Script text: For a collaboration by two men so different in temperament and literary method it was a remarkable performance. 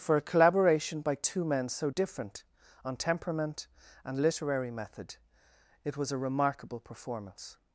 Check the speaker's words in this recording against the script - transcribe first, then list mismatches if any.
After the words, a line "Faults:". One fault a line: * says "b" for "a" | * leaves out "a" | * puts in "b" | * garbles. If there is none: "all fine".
For a collaboration by two men so different on temperament and literary method it was a remarkable performance.
Faults:
* says "on" for "in"